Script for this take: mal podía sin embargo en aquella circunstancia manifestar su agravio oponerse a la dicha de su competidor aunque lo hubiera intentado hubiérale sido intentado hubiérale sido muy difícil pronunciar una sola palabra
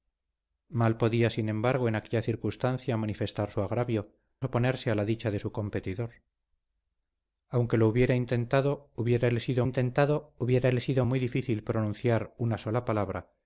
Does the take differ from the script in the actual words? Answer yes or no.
no